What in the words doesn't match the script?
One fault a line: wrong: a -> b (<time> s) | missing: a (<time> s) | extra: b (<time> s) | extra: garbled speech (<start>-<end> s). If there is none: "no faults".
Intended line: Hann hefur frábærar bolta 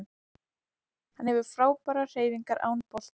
extra: hreyfingar án (2.2 s)